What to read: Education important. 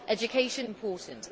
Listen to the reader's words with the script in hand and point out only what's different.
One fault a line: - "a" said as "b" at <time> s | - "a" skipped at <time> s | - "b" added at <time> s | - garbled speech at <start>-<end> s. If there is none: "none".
none